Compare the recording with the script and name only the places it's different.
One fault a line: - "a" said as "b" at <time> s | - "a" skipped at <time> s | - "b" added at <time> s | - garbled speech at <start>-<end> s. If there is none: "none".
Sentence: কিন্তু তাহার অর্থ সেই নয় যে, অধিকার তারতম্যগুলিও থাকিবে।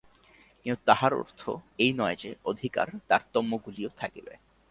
- "সেই" said as "এই" at 1.8 s